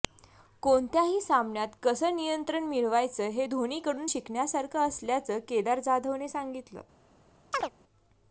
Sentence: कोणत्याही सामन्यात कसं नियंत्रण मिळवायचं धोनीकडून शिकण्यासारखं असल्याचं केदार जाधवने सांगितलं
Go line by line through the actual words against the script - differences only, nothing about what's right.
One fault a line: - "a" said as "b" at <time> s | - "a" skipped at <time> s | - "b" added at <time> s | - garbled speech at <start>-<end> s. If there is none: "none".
- "हे" added at 3.3 s